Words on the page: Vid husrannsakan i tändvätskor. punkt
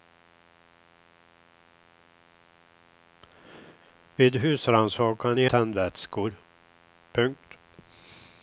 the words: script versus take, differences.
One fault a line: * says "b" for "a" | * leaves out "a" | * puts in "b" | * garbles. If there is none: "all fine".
all fine